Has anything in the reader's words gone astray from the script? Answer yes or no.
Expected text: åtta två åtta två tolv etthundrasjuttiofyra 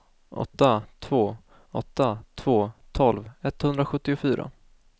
no